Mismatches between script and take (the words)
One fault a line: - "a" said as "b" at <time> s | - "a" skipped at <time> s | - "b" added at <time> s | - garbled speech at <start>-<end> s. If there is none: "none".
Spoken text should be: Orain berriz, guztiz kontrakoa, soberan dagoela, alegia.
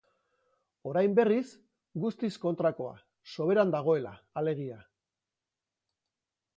none